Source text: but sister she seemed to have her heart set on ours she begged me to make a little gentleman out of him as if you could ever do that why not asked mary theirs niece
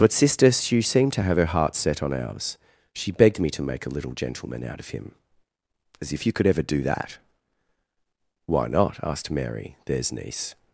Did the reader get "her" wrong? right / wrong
right